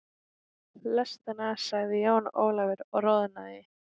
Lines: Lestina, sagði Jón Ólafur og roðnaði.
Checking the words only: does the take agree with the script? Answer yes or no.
yes